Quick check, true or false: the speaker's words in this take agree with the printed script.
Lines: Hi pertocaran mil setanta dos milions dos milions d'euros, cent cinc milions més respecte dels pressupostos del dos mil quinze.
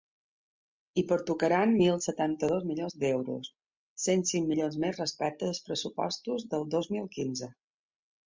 false